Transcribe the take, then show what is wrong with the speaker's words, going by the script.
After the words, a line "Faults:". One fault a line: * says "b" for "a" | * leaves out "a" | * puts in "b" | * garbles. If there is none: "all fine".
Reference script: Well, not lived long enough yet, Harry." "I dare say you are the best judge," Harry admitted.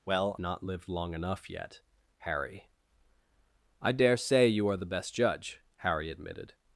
Well, not lived long enough yet, Harry." "I dare say you are the best judge," Harry admitted.
Faults:
all fine